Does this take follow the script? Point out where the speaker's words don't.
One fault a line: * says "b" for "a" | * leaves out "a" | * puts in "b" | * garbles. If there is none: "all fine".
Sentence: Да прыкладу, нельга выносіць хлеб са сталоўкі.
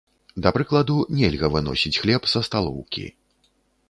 all fine